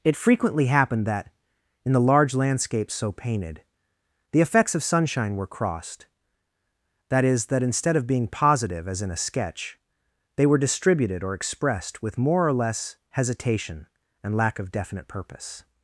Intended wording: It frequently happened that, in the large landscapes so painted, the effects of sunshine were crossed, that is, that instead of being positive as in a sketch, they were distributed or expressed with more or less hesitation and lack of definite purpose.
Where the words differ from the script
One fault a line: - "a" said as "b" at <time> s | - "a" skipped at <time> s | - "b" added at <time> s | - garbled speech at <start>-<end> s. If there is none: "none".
none